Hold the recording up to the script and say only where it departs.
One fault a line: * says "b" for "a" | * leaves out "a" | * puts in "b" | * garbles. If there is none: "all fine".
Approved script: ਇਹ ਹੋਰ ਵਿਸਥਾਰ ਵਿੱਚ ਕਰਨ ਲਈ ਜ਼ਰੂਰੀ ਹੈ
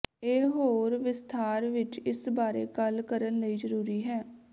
* puts in "ਇਸ ਬਾਰੇ ਗੱਲ"